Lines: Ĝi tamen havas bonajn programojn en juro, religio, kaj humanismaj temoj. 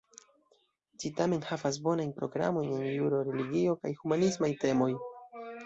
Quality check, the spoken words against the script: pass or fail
pass